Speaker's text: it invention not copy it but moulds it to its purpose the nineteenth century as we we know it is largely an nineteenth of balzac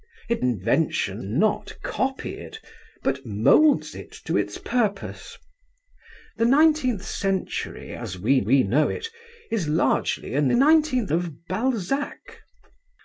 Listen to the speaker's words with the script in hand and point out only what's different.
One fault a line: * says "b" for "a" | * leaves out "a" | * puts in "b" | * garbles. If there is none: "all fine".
all fine